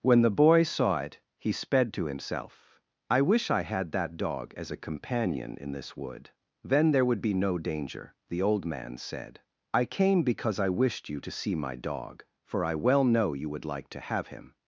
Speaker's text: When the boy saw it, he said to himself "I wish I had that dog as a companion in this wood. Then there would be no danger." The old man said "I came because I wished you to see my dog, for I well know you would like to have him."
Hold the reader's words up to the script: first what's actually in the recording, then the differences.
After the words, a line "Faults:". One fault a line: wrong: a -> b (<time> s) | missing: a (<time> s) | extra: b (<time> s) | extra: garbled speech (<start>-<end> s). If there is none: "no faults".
When the boy saw it, he sped to himself "I wish I had that dog as a companion in this wood. Then there would be no danger." The old man said "I came because I wished you to see my dog, for I well know you would like to have him."
Faults:
wrong: said -> sped (1.5 s)